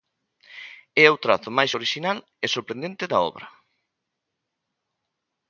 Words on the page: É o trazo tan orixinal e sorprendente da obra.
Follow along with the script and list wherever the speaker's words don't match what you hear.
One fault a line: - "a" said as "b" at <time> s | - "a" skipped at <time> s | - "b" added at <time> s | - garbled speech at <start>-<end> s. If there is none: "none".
- "tan" said as "máis" at 1.6 s